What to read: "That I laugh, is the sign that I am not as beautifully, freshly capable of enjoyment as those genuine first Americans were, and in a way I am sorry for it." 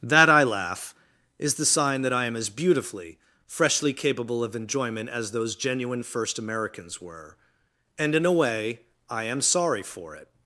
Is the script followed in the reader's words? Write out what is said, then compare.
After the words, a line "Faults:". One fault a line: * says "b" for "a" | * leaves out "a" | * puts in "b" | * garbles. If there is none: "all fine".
"That I laugh, is the sign that I am as beautifully, freshly capable of enjoyment as those genuine first Americans were, and in a way I am sorry for it."
Faults:
* leaves out "not"